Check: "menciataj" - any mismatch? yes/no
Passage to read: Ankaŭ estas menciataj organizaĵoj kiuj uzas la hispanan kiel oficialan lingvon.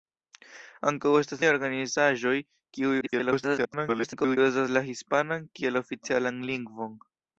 yes